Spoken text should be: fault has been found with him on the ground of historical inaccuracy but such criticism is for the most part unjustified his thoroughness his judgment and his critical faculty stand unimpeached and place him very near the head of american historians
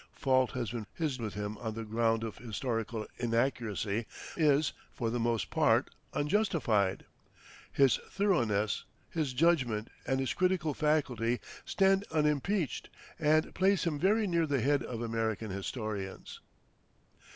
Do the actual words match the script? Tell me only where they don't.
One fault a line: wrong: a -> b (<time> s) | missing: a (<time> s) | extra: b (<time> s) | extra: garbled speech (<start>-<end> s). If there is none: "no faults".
wrong: found -> his (0.9 s)
missing: but such criticism (4.1 s)